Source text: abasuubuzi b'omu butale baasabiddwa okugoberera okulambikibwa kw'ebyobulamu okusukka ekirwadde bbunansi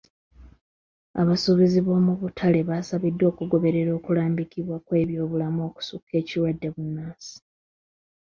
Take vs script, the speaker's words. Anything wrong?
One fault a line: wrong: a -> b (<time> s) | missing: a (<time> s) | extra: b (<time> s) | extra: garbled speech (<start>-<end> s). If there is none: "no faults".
no faults